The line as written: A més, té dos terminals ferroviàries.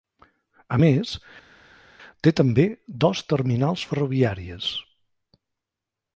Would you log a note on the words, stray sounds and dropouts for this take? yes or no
yes